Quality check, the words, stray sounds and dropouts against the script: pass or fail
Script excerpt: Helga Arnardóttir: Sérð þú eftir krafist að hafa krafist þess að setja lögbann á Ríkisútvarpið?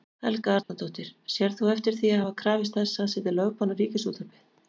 fail